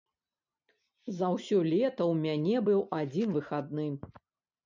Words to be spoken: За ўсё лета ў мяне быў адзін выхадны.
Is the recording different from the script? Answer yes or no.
no